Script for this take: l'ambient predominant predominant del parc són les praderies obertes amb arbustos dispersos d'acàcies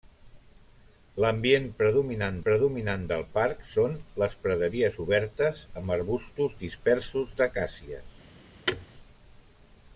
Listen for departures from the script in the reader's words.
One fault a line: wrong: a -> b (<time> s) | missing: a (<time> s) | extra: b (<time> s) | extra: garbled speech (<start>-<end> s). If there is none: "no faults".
no faults